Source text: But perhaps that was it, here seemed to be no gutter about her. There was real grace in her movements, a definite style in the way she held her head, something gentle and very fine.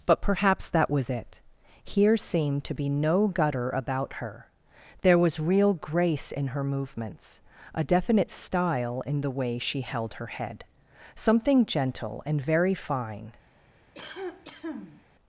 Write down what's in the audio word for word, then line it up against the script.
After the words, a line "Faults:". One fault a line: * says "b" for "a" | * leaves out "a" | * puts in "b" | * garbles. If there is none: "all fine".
But perhaps that was it, here seemed to be no gutter about her. There was real grace in her movements, a definite style in the way she held her head, something gentle and very fine.
Faults:
all fine